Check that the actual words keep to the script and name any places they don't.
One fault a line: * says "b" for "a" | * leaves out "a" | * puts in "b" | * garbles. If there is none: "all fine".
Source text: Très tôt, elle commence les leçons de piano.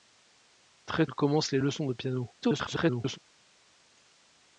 * leaves out "tôt"
* garbles